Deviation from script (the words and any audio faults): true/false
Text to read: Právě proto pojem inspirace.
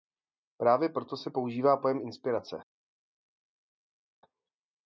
true